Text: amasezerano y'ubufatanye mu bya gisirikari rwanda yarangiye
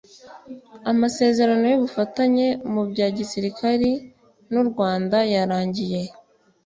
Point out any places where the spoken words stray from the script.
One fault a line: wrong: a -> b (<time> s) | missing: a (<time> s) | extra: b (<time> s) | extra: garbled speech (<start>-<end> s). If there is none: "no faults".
extra: n'u (4.5 s)